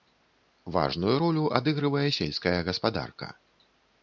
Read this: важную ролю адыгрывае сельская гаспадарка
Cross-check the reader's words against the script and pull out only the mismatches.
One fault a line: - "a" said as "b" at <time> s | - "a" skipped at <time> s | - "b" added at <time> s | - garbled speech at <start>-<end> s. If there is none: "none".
none